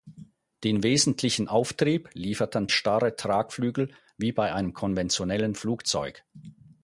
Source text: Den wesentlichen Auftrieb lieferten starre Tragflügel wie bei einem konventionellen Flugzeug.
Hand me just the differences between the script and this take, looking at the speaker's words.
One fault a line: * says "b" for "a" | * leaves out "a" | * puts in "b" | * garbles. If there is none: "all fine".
all fine